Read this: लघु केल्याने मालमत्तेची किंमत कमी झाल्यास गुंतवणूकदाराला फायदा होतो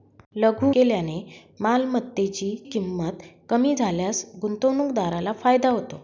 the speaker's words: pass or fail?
pass